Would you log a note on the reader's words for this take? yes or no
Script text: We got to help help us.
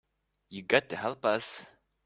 yes